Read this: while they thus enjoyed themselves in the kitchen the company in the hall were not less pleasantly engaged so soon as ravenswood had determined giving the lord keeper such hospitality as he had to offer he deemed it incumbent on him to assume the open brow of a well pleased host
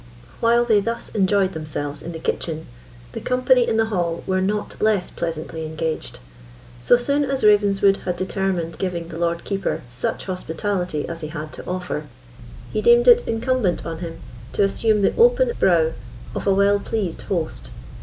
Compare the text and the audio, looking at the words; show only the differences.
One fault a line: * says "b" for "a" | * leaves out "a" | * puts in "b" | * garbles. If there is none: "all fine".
all fine